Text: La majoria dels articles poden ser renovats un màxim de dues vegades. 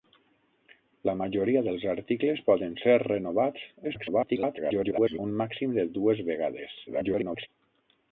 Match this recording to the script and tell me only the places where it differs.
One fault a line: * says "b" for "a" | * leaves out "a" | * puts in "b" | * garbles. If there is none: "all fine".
* garbles
* garbles